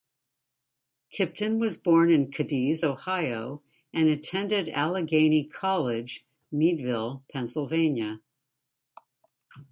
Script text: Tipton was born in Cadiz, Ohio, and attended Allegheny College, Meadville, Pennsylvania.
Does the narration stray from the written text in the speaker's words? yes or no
no